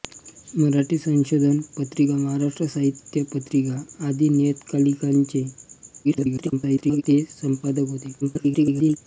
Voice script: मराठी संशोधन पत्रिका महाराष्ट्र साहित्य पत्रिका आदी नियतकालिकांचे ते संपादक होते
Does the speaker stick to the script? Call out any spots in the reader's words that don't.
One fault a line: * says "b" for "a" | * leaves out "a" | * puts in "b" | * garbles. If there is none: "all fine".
* garbles
* garbles